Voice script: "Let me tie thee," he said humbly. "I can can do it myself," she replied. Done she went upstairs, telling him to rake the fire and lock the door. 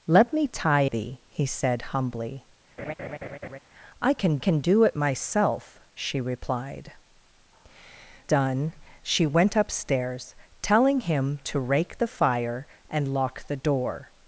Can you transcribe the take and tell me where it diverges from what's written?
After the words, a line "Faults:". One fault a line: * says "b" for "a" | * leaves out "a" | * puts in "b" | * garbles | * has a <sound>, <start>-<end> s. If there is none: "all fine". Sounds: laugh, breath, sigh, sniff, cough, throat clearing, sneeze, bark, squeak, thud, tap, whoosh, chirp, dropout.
"Let me tie thee," he said humbly. "I can can do it myself," she replied. Done she went upstairs, telling him to rake the fire and lock the door.
Faults:
* has a laugh, 2.8-3.6 s